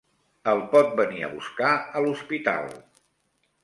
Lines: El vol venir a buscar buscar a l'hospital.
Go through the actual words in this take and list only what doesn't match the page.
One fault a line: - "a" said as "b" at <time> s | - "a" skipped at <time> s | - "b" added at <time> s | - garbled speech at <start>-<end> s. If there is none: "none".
- "vol" said as "pot" at 0.7 s
- "buscar" skipped at 1.7 s